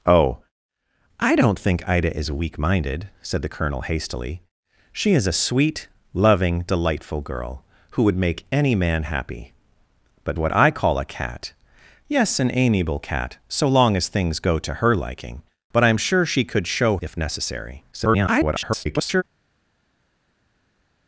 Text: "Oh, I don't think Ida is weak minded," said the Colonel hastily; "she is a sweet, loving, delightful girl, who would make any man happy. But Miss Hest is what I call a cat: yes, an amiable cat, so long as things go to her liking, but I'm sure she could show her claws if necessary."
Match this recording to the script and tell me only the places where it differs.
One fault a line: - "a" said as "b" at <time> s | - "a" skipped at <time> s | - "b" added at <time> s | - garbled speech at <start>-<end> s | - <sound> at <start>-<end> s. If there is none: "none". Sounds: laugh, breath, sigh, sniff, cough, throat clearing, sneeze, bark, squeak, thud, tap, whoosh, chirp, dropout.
- "Miss Hest is" skipped at 10.4 s
- "her claws" skipped at 17.0 s
- garbled speech at 17.9-19.2 s